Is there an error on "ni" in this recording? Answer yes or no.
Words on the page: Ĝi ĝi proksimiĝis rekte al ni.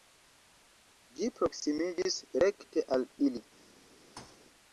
yes